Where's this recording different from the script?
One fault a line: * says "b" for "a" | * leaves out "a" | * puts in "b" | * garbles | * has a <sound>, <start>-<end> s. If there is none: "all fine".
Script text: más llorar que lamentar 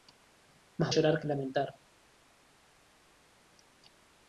all fine